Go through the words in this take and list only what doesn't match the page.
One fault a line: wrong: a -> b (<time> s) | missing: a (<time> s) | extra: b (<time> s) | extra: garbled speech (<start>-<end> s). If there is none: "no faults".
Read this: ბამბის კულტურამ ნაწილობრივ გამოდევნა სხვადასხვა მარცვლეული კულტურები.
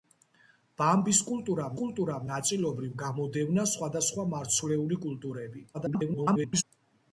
extra: კულტურამ (1.8 s)
extra: garbled speech (5.7-6.6 s)